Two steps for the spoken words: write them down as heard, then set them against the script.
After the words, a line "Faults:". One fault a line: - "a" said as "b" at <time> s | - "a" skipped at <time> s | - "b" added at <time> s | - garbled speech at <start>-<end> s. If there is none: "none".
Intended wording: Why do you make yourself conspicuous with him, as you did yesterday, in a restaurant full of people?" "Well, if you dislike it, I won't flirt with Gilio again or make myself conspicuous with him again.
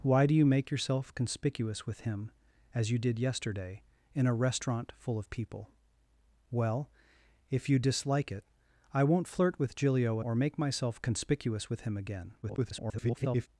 Why do you make yourself conspicuous with him, as you did yesterday, in a restaurant full of people?" "Well, if you dislike it, I won't flirt with Gilio or make myself conspicuous with him again. [garbled]
Faults:
- "again" skipped at 10.2 s
- garbled speech at 12.4-13.5 s